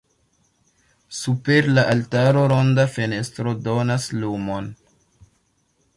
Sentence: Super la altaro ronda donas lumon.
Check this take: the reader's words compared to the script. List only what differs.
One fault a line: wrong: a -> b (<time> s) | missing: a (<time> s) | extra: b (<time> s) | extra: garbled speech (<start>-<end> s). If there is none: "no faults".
extra: fenestro (3.0 s)